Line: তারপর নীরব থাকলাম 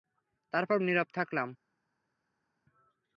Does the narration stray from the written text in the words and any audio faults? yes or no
no